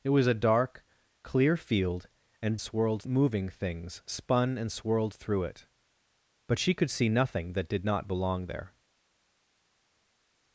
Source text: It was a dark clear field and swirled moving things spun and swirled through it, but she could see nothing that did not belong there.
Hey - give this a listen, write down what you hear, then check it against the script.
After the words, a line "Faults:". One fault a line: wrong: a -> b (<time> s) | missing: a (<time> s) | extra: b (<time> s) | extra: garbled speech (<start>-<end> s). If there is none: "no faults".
It was a dark clear field and swirled moving things spun and swirled through it, but she could see nothing that did not belong there.
Faults:
no faults